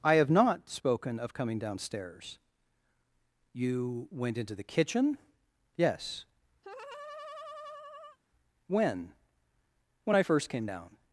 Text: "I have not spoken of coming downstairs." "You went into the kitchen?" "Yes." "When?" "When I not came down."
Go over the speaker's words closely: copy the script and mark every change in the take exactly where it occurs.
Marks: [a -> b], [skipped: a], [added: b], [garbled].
"I have not spoken of coming downstairs." "You went into the kitchen?" "Yes." "When?" "When I [not -> first] came down."